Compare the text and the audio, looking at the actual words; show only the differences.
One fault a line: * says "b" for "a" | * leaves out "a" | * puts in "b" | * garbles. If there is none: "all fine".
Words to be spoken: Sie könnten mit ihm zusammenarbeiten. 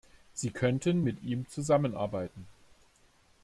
all fine